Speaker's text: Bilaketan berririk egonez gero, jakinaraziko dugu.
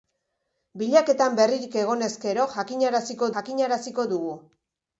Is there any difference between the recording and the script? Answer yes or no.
yes